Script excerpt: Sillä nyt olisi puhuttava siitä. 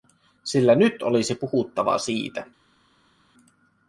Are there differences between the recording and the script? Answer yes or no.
no